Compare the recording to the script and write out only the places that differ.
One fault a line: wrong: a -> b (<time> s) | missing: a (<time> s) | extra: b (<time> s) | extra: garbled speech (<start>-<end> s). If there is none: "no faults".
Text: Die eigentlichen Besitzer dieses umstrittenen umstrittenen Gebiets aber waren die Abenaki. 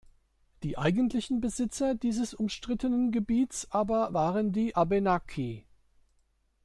missing: umstrittenen (3.1 s)